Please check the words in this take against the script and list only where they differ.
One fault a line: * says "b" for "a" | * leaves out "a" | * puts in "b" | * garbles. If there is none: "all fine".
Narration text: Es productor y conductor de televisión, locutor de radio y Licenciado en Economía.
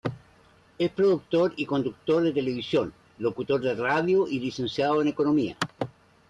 all fine